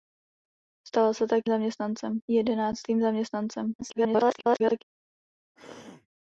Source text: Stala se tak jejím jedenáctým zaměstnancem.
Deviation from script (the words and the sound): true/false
true